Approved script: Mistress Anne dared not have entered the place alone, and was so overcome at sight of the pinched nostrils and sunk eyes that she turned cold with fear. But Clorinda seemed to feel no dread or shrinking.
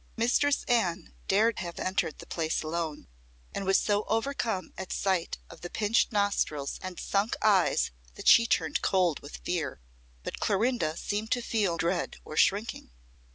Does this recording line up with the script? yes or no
no